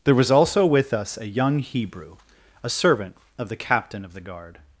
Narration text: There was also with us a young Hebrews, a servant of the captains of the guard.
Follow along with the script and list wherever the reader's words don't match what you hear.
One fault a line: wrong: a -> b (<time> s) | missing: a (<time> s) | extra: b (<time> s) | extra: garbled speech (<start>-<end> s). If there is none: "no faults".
wrong: Hebrews -> Hebrew (1.6 s)
wrong: captains -> captain (3.5 s)